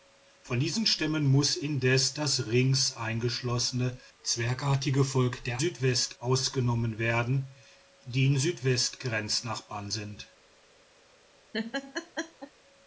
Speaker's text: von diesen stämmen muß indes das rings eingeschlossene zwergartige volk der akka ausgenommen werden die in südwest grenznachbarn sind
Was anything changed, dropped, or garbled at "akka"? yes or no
yes